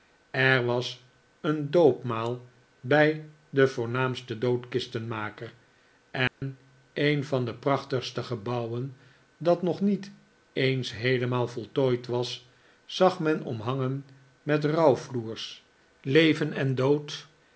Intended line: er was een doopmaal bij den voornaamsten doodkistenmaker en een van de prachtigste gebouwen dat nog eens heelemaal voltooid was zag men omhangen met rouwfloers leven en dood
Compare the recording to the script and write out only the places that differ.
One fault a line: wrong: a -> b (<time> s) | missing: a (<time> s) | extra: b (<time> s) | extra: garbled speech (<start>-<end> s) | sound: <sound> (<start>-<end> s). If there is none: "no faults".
sound: dropout (6.3-6.4 s)
extra: niet (9.8 s)